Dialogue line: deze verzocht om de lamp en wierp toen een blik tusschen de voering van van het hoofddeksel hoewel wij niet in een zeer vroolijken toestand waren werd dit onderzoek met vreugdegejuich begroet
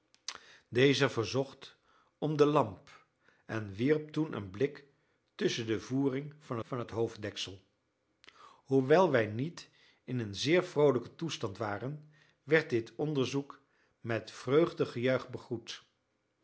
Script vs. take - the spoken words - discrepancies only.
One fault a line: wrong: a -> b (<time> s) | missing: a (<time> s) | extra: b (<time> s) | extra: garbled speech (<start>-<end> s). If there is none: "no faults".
no faults